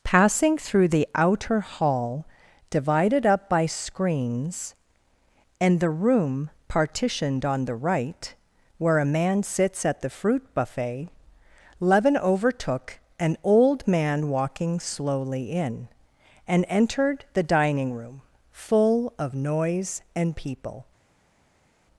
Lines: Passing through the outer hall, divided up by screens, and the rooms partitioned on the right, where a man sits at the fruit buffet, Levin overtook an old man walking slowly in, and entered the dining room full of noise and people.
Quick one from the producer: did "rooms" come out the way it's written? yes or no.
no